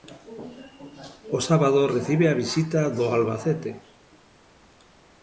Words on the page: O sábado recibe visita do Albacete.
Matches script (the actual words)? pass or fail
fail